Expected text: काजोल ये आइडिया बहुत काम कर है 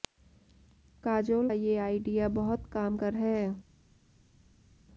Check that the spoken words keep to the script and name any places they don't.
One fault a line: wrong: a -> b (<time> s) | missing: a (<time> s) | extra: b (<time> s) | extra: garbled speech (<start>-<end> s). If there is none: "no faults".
no faults